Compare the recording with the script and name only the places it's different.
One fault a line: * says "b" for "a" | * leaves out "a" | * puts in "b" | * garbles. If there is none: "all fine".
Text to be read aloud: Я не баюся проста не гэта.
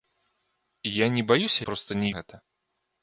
all fine